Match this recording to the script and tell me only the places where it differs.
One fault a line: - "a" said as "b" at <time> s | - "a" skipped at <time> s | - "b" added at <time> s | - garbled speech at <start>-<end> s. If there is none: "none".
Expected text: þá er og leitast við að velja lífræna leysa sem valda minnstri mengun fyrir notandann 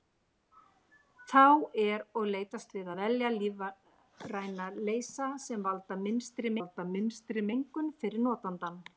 - "valda minnstri" added at 6.6 s